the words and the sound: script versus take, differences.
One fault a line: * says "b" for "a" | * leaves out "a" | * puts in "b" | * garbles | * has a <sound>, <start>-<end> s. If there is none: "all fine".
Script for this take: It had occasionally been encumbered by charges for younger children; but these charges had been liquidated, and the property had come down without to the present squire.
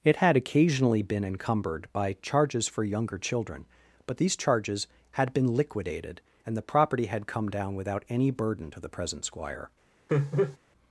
* puts in "any burden"
* has a laugh, 10.1-10.6 s